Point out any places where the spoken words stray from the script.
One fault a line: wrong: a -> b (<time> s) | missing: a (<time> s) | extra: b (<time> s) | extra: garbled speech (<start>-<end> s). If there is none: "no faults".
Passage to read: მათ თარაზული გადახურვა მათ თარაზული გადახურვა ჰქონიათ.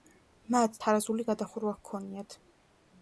missing: მათ თარაზული გადახურვა (1.8 s)